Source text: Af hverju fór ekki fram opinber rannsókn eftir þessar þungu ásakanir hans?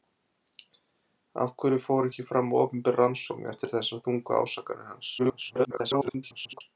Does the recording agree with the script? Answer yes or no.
no